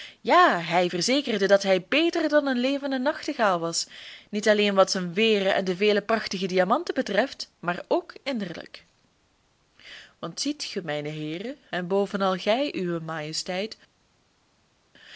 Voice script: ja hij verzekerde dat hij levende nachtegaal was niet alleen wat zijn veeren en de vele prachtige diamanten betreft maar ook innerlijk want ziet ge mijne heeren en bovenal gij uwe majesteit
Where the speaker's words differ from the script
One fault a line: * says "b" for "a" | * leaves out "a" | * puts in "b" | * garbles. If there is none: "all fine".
* puts in "beter dan een"